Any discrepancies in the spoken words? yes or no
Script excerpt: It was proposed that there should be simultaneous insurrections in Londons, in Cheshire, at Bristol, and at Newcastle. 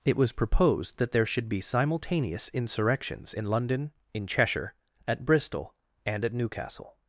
yes